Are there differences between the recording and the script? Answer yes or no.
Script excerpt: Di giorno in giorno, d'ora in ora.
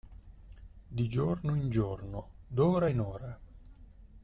no